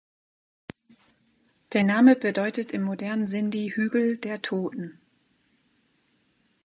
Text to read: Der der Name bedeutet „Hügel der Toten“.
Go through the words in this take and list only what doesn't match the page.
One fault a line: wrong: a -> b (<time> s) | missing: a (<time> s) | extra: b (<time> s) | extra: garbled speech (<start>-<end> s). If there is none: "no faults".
missing: der (1.8 s)
extra: im modernen Sindhi (2.7 s)